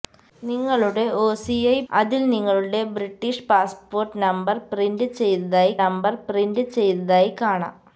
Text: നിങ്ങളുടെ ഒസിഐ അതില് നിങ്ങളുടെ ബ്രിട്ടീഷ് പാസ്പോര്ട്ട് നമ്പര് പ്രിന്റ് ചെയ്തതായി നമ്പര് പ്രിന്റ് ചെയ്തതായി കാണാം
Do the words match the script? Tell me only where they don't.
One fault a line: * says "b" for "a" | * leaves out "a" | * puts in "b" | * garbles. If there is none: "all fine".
all fine